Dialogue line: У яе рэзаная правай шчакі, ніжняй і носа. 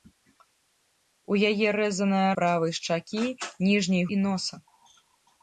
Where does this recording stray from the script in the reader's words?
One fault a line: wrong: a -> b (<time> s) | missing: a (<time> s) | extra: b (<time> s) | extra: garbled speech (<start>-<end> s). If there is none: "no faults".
no faults